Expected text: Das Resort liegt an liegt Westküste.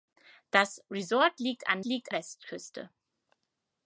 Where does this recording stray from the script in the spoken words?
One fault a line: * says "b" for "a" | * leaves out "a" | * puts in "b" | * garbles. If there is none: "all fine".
all fine